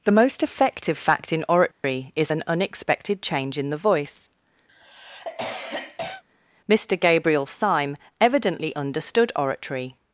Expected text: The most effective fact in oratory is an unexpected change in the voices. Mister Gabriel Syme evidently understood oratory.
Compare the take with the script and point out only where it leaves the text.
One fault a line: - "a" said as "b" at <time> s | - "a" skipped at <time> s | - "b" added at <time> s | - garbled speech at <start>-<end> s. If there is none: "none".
- "voices" said as "voice" at 3.8 s